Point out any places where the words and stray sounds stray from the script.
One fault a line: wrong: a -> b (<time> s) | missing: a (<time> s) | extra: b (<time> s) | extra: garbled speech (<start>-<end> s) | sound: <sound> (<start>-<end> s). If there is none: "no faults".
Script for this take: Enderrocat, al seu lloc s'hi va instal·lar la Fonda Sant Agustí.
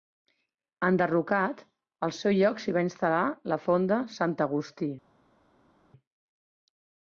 no faults